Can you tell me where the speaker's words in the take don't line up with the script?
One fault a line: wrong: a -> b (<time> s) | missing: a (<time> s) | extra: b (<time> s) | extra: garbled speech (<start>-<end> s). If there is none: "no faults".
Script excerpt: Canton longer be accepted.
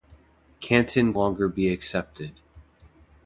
no faults